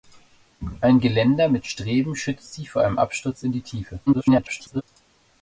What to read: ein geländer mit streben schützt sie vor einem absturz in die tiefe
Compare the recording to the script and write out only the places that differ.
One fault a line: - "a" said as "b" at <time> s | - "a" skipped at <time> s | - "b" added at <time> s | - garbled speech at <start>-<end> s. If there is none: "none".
- garbled speech at 4.1-4.8 s